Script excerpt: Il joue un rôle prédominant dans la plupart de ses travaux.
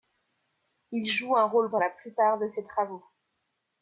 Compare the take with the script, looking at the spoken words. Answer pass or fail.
fail